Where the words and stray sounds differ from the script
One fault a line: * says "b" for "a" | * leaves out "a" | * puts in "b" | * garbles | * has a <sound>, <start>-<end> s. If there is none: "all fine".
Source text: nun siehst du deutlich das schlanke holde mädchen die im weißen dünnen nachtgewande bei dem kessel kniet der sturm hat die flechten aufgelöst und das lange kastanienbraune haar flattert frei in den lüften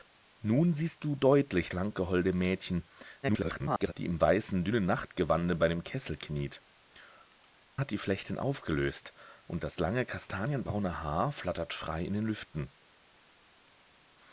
* leaves out "das"
* garbles
* leaves out "der sturm"